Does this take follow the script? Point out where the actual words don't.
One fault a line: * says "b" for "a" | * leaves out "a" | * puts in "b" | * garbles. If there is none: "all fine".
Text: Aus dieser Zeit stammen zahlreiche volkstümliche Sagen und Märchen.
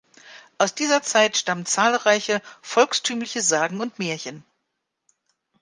all fine